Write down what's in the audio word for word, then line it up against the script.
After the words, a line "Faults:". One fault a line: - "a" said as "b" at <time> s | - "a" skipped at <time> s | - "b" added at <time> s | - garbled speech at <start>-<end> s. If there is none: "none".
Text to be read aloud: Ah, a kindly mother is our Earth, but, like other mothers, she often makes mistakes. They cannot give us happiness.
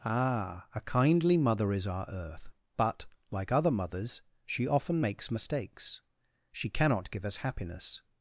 Ah, a kindly mother is our Earth, but, like other mothers, she often makes mistakes. She cannot give us happiness.
Faults:
- "They" said as "She" at 6.5 s